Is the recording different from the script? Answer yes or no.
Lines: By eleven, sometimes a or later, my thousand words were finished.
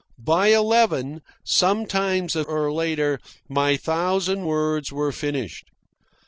no